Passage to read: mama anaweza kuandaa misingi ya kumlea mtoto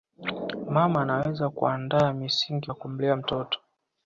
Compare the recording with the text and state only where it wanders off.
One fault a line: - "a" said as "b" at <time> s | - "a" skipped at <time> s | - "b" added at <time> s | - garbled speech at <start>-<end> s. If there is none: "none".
none